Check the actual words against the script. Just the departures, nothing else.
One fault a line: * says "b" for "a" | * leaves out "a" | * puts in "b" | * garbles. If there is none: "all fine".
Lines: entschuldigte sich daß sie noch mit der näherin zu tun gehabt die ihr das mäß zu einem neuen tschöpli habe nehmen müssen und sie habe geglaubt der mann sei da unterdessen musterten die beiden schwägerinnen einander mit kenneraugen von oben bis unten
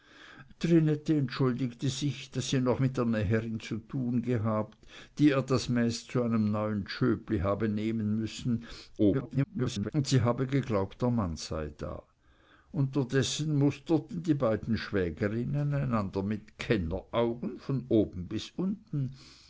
* garbles